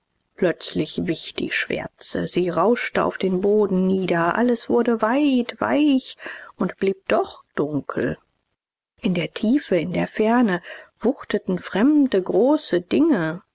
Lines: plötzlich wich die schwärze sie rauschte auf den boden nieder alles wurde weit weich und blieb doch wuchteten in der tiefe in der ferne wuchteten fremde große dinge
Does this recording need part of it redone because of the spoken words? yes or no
yes